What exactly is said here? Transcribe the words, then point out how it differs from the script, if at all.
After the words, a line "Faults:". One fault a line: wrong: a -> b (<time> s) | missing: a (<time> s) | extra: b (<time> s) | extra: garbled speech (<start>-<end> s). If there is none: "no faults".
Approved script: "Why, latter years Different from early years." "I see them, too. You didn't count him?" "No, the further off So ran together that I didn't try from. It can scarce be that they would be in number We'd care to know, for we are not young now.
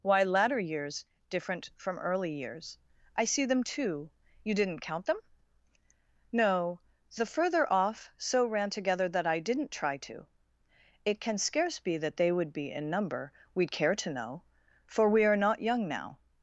"Why, latter years Different from early years." "I see them, too. You didn't count them?" "No, the further off So ran together that I didn't try to. It can scarce be that they would be in number We'd care to know, for we are not young now.
Faults:
wrong: him -> them (5.1 s)
wrong: from -> to (10.0 s)